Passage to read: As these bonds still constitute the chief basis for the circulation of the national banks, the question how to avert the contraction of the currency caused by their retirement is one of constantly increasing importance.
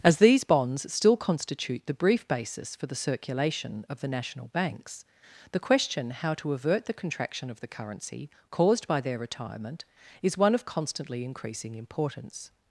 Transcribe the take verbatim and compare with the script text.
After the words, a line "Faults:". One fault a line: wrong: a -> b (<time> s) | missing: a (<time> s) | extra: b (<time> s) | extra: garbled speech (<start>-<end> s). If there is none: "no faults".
As these bonds still constitute the brief basis for the circulation of the national banks, the question how to avert the contraction of the currency caused by their retirement is one of constantly increasing importance.
Faults:
wrong: chief -> brief (1.9 s)